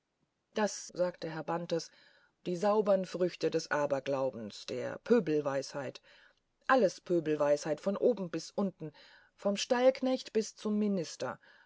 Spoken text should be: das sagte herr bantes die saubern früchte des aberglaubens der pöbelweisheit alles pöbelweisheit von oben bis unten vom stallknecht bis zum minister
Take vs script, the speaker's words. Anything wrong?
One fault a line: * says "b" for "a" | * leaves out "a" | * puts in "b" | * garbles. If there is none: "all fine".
all fine